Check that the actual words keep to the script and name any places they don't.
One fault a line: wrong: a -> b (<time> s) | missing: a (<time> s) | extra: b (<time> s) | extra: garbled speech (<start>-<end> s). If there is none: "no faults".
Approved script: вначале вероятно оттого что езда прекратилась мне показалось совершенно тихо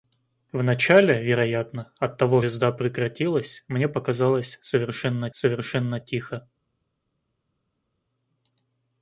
missing: что (2.4 s)
extra: совершенно (5.3 s)